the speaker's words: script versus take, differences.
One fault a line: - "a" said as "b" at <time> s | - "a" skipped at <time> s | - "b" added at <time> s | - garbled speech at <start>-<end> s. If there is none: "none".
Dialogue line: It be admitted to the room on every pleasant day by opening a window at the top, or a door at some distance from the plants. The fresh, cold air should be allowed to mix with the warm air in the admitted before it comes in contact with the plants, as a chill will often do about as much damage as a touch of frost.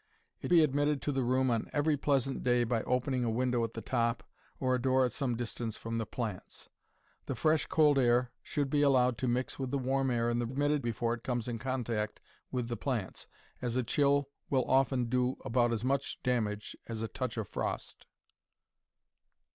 none